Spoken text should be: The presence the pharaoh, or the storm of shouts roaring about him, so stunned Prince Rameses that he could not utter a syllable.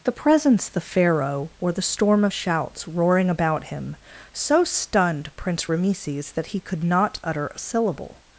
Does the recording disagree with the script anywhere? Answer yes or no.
no